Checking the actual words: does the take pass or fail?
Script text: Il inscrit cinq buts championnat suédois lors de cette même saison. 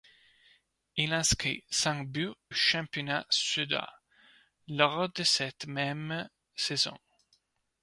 pass